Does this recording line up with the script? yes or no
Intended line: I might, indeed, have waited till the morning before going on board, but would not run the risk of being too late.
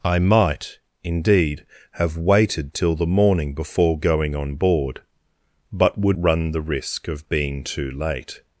no